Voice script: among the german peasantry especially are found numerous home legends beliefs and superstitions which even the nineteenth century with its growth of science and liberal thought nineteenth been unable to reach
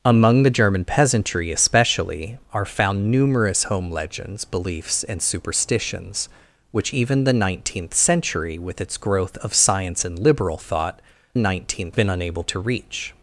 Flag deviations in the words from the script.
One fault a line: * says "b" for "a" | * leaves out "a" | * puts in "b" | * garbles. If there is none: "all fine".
all fine